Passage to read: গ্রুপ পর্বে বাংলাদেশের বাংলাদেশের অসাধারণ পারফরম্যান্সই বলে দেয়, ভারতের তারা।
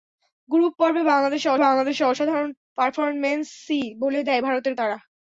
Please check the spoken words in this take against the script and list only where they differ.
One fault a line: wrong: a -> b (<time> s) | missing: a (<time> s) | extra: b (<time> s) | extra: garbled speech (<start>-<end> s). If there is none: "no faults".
no faults